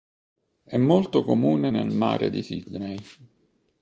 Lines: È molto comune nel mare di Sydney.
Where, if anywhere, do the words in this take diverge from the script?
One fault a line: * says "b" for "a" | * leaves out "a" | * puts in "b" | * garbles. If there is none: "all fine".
all fine